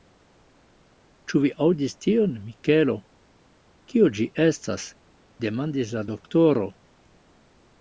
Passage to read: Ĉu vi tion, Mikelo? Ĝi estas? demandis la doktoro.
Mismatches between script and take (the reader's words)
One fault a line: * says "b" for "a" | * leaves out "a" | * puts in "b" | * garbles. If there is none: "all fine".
* puts in "aŭdis"
* puts in "Kio"